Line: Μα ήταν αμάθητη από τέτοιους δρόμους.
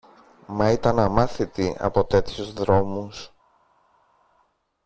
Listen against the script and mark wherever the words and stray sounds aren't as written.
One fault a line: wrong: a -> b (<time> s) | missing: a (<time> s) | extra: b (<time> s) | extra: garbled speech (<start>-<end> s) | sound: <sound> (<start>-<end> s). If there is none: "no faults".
no faults